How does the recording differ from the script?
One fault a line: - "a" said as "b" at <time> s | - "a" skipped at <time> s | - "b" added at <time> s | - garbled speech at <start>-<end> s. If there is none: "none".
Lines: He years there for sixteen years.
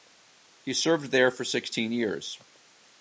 - "years" said as "served" at 0.7 s